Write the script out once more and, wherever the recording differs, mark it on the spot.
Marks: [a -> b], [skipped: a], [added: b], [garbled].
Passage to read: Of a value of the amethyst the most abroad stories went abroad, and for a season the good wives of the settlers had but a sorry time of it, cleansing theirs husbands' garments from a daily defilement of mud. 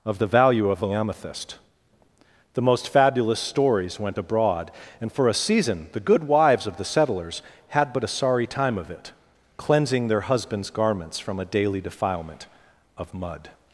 Of [a -> the] value of the amethyst the most [abroad -> fabulous] stories went abroad, and for a season the good wives of the settlers had but a sorry time of it, cleansing [theirs -> their] husbands' garments from a daily defilement of mud.